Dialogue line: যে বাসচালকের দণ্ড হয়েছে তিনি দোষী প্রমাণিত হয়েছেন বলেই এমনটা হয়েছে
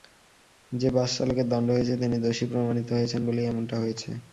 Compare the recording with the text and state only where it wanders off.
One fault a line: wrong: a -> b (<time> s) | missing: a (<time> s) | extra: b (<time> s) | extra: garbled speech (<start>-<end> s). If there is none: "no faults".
no faults